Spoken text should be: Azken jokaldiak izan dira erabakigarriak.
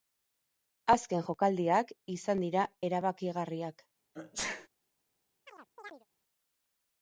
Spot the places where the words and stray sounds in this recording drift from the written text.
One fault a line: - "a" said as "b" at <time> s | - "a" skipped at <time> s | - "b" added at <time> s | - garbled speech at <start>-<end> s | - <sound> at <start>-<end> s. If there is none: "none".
- sneeze at 4.1-4.7 s
- chirp at 5.5-6.1 s